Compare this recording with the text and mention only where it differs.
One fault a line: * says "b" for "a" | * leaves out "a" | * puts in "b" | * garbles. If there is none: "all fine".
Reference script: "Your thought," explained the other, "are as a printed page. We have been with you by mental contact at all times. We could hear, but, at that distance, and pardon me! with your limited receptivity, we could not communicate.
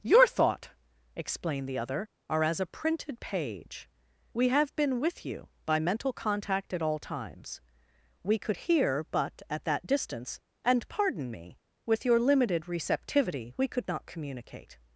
all fine